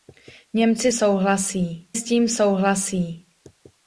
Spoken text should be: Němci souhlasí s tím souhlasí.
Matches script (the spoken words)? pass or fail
pass